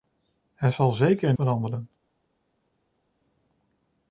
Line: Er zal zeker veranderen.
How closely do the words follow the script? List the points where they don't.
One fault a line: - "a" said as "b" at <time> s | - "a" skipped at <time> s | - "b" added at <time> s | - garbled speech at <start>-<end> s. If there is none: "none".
none